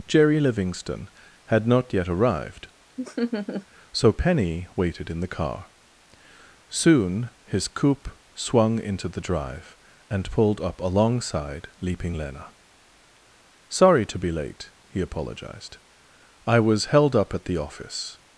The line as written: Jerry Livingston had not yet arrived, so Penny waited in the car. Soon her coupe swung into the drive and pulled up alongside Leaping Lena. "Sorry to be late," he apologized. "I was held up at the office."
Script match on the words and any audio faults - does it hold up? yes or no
no